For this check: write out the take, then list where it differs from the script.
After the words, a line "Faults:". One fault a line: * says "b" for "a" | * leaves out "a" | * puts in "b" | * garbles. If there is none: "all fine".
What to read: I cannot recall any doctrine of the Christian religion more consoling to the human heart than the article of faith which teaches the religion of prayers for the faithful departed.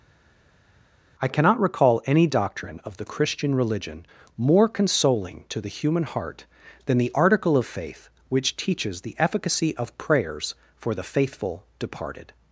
I cannot recall any doctrine of the Christian religion more consoling to the human heart than the article of faith which teaches the efficacy of prayers for the faithful departed.
Faults:
* says "efficacy" for "religion"